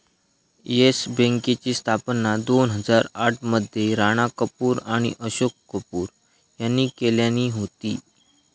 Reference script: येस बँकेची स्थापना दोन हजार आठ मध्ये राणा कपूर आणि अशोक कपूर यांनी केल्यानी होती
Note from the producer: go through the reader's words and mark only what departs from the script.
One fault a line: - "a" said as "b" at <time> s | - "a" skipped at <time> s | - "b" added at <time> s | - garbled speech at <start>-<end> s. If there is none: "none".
none